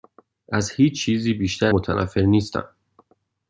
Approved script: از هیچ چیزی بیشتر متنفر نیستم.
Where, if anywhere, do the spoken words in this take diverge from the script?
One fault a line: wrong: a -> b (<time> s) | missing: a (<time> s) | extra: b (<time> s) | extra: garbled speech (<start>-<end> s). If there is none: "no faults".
no faults